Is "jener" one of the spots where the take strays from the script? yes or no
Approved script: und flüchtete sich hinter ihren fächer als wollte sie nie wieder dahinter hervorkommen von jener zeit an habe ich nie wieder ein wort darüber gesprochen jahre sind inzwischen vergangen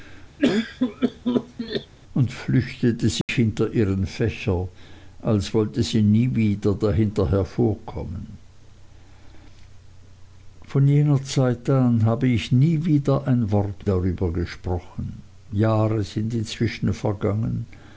no